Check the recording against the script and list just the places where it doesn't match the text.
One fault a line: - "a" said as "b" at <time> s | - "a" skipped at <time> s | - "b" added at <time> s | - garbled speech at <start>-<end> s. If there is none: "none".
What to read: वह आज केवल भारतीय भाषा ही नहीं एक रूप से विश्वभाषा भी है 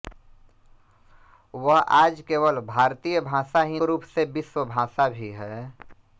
- "नहीं एक" skipped at 3.8 s